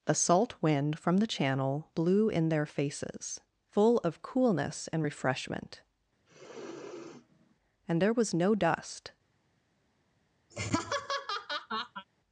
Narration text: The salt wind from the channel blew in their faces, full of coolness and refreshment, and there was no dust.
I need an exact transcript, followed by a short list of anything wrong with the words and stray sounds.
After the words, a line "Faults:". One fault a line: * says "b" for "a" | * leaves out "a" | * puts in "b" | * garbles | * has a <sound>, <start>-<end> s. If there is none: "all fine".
The salt wind from the channel blew in their faces, full of coolness and refreshment, and there was no dust.
Faults:
* has a sniff, 6.3-7.6 s
* has a laugh, 10.5-12.0 s